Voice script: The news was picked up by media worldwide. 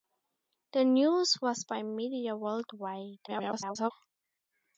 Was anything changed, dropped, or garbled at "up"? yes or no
yes